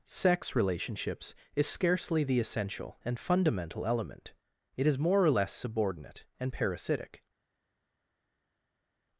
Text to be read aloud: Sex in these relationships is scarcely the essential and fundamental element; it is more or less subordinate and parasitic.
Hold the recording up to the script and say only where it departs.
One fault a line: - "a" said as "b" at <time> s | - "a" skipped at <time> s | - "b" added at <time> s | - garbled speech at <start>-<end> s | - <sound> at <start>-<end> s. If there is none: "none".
- "in these" skipped at 0.6 s